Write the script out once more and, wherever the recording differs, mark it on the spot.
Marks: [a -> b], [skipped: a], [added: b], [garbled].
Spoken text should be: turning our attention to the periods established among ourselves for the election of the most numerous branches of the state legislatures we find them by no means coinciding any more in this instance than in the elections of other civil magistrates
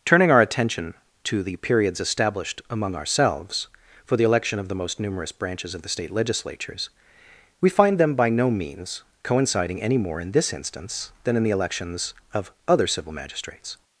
turning our attention to the periods established among ourselves for the election of the most numerous branches of the state legislatures we find them by no means coinciding any more in this instance than in the elections of other civil magistrates